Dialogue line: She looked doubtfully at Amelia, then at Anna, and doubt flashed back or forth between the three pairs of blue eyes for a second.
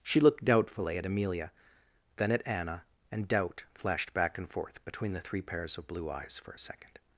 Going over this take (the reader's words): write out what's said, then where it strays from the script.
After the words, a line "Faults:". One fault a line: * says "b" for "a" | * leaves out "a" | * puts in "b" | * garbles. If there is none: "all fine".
She looked doubtfully at Amelia, then at Anna, and doubt flashed back and forth between the three pairs of blue eyes for a second.
Faults:
* says "and" for "or"